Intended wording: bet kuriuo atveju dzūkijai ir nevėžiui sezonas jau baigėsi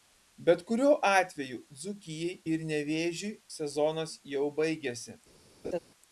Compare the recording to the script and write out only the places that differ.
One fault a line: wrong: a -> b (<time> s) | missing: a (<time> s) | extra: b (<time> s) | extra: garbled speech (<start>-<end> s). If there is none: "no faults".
no faults